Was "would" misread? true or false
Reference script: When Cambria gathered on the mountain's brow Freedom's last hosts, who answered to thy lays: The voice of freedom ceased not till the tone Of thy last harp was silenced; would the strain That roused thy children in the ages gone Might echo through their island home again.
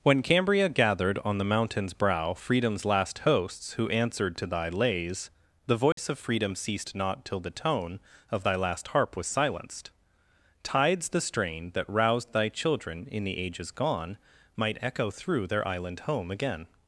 true